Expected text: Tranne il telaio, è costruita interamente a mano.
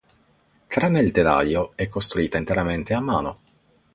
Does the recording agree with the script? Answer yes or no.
yes